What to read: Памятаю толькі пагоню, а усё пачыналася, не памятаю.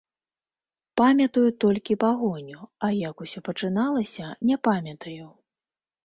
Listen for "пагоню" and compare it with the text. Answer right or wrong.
right